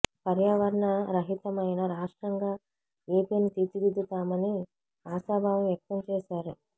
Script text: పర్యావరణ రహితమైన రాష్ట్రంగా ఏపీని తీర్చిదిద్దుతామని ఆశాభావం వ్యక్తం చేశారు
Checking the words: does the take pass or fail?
pass